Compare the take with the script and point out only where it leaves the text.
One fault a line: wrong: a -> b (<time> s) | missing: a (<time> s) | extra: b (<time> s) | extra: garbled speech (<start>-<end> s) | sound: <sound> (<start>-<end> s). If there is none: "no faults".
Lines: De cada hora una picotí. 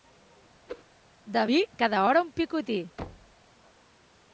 sound: whoosh (0.7-0.8 s)
extra: vi (1.4 s)
wrong: una -> un (2.2 s)
sound: thud (3.0-3.4 s)